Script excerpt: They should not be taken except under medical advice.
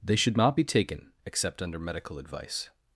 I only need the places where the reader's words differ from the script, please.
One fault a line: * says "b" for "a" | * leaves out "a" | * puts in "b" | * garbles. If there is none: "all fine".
all fine